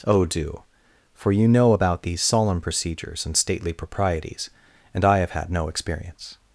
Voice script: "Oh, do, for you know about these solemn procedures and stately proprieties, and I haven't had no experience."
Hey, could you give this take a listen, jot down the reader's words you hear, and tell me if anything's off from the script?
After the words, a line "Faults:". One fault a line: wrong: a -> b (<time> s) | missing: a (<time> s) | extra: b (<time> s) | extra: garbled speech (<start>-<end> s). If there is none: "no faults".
"Oh, do, for you know about these solemn procedures and stately proprieties, and I have had no experience."
Faults:
wrong: haven't -> have (5.2 s)